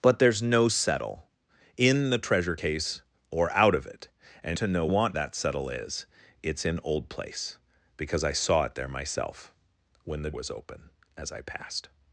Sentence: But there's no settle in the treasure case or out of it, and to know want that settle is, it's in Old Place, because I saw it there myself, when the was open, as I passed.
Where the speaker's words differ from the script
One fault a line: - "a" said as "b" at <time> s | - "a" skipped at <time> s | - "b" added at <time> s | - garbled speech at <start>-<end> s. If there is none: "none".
none